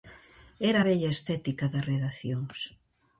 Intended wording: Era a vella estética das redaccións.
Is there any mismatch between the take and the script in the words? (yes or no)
no